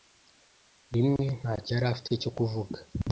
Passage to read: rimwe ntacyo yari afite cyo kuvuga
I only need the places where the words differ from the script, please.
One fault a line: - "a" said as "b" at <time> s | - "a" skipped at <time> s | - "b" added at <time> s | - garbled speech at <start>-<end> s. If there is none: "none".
none